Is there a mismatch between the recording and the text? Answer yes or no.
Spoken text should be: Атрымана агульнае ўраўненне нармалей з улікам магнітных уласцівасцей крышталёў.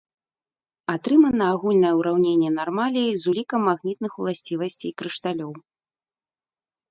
no